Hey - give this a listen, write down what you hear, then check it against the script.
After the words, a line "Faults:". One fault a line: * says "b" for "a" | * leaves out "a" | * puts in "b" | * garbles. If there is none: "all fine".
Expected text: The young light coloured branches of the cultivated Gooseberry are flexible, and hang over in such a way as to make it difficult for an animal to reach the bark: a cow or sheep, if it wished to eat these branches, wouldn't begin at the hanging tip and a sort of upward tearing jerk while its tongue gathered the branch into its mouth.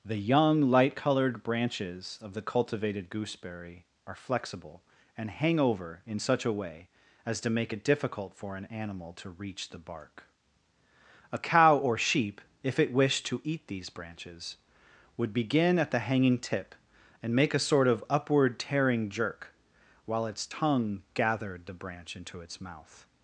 The young light coloured branches of the cultivated Gooseberry are flexible, and hang over in such a way as to make it difficult for an animal to reach the bark: a cow or sheep, if it wished to eat these branches, would begin at the hanging tip and make a sort of upward tearing jerk while its tongue gathered the branch into its mouth.
Faults:
* says "would" for "wouldn't"
* puts in "make"